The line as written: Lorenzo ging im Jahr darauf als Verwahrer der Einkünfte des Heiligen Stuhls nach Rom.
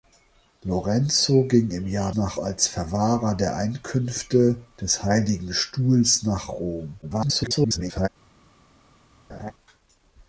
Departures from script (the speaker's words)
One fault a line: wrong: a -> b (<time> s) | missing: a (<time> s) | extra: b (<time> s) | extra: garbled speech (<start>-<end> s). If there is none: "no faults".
wrong: darauf -> nach (2.1 s)
extra: garbled speech (7.0-8.1 s)